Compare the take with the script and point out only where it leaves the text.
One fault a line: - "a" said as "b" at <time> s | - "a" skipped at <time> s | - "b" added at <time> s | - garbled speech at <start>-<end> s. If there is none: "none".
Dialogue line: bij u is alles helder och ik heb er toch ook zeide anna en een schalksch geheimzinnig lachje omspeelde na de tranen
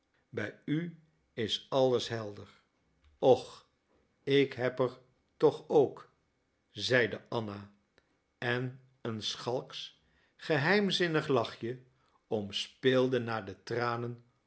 none